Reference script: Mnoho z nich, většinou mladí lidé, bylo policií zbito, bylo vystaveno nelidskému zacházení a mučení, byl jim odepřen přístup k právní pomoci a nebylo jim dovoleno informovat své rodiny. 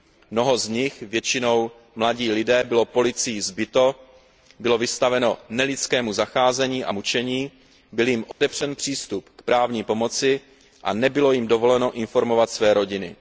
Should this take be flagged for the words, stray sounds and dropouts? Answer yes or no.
yes